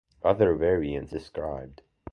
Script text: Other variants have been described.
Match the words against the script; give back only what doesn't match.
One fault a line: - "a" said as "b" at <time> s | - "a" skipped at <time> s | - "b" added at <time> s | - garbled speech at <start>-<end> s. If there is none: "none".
- "have been" skipped at 1.1 s